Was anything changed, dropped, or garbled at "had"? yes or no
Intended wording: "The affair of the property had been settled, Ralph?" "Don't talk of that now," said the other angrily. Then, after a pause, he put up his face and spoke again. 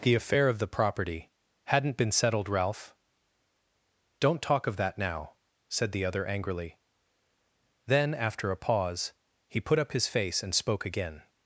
yes